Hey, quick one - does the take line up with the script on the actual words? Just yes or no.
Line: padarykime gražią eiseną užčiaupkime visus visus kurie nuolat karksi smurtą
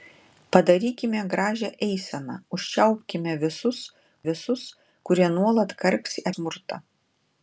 yes